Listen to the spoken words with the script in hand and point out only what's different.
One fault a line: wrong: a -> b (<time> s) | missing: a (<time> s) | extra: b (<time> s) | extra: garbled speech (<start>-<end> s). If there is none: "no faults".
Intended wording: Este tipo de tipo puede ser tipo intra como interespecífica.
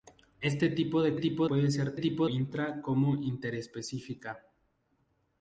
no faults